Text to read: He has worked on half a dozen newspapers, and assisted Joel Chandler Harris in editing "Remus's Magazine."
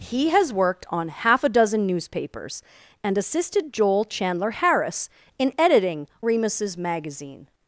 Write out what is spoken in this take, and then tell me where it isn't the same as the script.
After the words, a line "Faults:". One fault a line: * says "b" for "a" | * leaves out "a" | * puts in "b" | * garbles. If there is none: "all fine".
He has worked on half a dozen newspapers, and assisted Joel Chandler Harris in editing "Remus's Magazine."
Faults:
all fine